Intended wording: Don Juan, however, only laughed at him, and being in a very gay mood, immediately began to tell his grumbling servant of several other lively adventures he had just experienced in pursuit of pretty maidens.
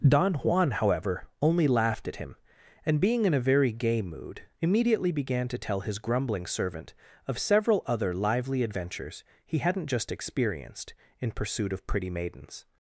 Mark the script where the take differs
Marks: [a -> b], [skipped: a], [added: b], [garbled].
Don Juan, however, only laughed at him, and being in a very gay mood, immediately began to tell his grumbling servant of several other lively adventures he [had -> hadn't] just experienced in pursuit of pretty maidens.